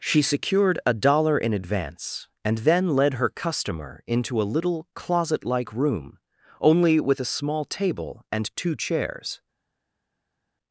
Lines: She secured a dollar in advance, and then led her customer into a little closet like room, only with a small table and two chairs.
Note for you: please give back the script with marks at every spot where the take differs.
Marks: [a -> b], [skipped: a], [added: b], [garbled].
She secured a dollar in advance, and then led her customer into a little closet like room, only with a small table and two chairs.